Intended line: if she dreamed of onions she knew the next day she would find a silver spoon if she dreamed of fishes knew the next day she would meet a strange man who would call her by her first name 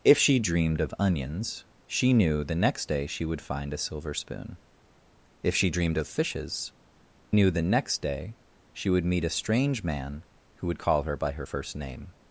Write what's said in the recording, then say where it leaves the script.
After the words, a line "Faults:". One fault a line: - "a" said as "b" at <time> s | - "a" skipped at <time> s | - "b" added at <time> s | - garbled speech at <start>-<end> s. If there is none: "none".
if she dreamed of onions she knew the next day she would find a silver spoon if she dreamed of fishes knew the next day she would meet a strange man who would call her by her first name
Faults:
none